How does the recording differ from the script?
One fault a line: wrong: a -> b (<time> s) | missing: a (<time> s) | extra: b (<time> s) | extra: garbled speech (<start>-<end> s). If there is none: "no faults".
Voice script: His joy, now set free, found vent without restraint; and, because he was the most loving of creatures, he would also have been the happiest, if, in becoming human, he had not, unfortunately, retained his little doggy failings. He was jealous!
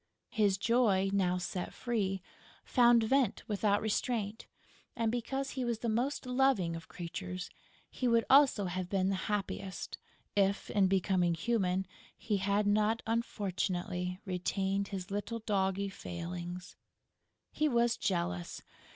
no faults